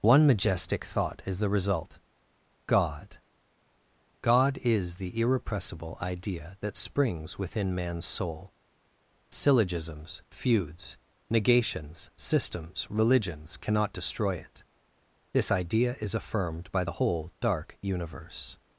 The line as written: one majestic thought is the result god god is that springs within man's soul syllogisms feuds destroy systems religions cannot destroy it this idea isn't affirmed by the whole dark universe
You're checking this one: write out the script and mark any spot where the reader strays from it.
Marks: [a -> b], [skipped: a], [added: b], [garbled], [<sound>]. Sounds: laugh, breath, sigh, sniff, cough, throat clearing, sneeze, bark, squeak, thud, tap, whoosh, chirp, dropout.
one majestic thought is the result god god is [added: the irrepressible idea] that springs within man's soul syllogisms feuds [destroy -> negations] systems religions cannot destroy it this idea [isn't -> is] affirmed by the whole dark universe